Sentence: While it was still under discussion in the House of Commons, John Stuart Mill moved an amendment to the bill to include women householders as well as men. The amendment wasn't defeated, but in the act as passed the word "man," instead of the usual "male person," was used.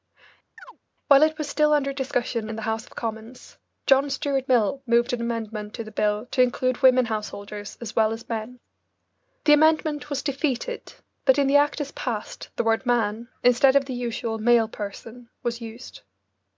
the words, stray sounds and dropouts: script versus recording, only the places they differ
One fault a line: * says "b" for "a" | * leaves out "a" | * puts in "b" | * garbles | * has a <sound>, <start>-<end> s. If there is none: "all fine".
* has a chirp, 0.6-0.8 s
* says "was" for "wasn't"